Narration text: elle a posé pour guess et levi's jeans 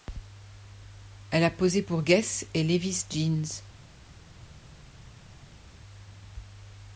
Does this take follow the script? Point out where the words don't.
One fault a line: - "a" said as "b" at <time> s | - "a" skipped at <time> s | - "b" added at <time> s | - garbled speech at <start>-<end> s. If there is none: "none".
none